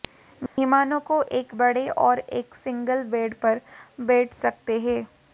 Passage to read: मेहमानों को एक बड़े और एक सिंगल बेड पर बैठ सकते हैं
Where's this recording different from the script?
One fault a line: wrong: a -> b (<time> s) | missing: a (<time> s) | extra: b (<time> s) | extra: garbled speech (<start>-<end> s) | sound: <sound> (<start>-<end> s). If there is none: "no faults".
sound: dropout (0.5-0.6 s)